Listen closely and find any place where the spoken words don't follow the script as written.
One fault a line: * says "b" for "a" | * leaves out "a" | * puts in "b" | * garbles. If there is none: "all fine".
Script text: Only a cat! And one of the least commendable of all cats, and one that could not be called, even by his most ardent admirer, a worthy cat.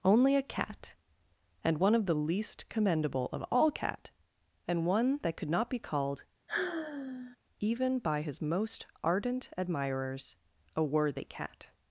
* says "cat" for "cats"
* says "admirers" for "admirer"